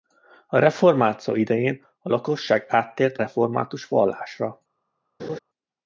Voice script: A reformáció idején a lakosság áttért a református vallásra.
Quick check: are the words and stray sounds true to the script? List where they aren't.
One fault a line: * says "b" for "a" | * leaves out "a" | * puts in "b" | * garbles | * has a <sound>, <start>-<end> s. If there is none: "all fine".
* leaves out "a"
* has a laugh, 5.2-5.4 s